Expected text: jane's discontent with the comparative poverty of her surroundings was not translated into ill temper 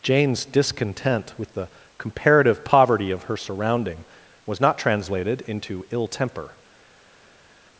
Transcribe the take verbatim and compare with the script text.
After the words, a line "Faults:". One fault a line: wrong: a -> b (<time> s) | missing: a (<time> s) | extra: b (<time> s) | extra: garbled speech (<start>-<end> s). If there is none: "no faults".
jane's discontent with the comparative poverty of her surrounding was not translated into ill temper
Faults:
wrong: surroundings -> surrounding (3.4 s)